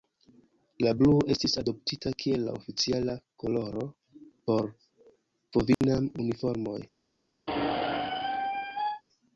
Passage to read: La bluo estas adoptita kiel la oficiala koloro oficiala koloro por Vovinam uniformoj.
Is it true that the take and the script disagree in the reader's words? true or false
true